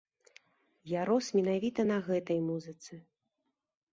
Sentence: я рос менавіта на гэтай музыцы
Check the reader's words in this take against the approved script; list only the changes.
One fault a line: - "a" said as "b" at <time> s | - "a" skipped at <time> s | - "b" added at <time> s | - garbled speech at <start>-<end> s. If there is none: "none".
none